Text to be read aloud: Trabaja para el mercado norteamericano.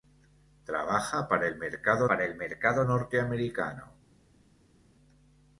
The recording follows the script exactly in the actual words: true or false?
false